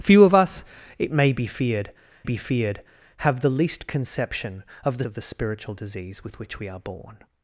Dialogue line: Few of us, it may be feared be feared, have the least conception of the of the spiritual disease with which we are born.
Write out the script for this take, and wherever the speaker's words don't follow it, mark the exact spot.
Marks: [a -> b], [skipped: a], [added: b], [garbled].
Few of us, it may be feared be feared, have the least conception of the of the spiritual disease with which we are born.